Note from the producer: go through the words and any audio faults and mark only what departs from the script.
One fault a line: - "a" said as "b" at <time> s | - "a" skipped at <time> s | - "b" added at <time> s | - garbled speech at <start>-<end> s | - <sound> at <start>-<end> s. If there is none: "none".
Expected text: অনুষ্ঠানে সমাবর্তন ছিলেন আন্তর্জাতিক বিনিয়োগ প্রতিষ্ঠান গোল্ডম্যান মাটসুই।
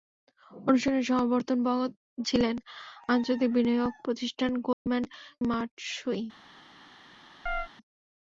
- dropout at 4.7-4.9 s
- chirp at 7.5-7.7 s